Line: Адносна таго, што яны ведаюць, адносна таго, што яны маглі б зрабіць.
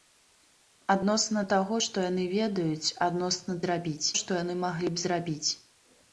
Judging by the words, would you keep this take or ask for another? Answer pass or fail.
fail